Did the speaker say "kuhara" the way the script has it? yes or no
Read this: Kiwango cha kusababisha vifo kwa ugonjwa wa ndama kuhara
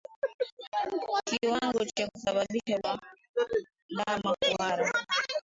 yes